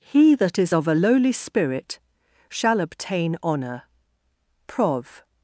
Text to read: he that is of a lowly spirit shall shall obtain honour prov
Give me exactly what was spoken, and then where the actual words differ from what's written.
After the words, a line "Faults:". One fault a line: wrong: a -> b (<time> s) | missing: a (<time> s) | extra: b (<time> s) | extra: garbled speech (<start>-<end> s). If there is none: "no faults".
he that is of a lowly spirit shall obtain honour prov
Faults:
missing: shall (2.8 s)